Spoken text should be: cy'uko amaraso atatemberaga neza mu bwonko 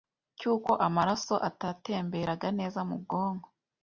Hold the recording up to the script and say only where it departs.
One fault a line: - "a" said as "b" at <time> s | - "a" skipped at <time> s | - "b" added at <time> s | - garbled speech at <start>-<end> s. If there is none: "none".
none